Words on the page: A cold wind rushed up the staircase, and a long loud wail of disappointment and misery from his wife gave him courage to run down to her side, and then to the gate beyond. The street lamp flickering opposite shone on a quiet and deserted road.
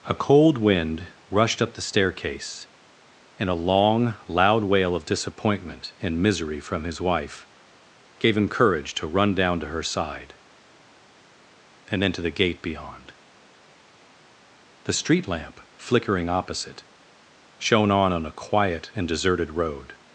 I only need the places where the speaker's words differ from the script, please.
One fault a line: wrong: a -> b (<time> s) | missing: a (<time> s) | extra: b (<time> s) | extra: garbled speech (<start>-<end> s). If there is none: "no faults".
extra: on (18.1 s)